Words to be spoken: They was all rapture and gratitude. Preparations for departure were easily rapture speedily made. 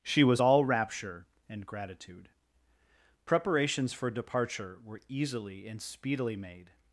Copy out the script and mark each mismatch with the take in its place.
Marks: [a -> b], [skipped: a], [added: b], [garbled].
[They -> She] was all rapture and gratitude. Preparations for departure were easily [rapture -> and] speedily made.